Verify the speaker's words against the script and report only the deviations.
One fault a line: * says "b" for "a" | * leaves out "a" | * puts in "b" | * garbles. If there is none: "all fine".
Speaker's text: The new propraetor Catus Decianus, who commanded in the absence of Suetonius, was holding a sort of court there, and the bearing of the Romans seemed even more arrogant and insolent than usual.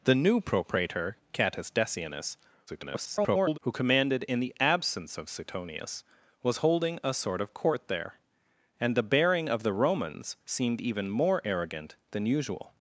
* garbles
* leaves out "and insolent"